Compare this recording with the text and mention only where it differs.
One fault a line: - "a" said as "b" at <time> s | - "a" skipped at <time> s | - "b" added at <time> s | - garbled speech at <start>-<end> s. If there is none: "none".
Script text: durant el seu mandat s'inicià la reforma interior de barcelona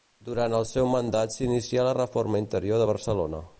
none